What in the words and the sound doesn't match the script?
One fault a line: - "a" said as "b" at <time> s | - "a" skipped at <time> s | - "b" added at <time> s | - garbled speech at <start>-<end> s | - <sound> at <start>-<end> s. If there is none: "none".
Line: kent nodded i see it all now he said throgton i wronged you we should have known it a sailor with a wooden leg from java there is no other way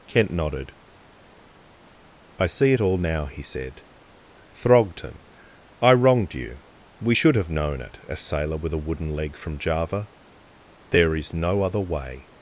none